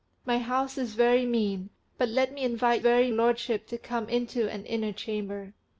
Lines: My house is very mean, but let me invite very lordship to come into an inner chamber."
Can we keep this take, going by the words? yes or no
yes